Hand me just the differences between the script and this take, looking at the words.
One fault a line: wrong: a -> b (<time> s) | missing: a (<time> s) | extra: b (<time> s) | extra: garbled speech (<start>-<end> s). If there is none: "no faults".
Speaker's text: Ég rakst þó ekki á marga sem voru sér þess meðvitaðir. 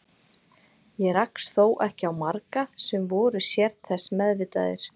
no faults